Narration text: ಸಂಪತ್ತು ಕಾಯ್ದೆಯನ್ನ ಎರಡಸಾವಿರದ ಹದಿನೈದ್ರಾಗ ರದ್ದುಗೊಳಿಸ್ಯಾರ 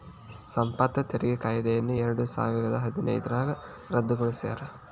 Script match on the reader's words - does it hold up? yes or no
no